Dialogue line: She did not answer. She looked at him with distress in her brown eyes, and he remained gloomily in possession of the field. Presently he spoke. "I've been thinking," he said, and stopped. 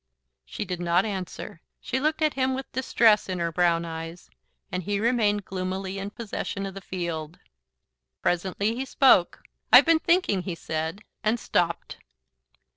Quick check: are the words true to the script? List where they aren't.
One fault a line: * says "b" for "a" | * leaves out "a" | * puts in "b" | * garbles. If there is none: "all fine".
all fine